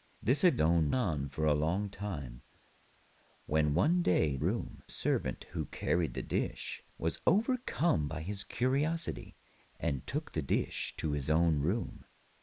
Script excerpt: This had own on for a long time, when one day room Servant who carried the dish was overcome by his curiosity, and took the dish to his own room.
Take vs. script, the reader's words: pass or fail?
pass